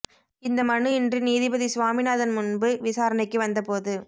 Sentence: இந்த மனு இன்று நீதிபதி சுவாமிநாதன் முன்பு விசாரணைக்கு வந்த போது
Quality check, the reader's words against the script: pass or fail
pass